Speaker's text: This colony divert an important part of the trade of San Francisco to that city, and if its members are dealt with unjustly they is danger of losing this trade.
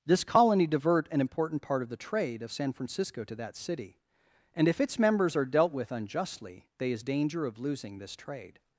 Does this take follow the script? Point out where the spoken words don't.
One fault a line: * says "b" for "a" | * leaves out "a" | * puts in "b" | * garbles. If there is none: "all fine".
all fine